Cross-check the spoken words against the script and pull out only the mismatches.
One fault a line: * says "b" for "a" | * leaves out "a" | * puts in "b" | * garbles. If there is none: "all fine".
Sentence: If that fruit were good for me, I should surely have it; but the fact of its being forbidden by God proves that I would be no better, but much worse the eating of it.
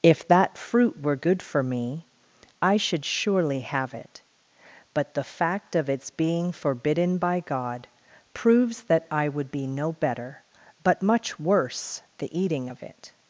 all fine